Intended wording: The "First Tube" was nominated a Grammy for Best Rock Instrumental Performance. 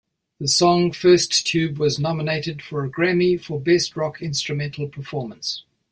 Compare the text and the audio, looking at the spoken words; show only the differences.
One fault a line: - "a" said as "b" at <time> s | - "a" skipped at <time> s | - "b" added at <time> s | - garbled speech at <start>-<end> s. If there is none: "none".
- "song" added at 0.5 s
- "for" added at 2.6 s